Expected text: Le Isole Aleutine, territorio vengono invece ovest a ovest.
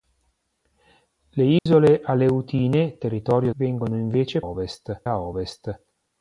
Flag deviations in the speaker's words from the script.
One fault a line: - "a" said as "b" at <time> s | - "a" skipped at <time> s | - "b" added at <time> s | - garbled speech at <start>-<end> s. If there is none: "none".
none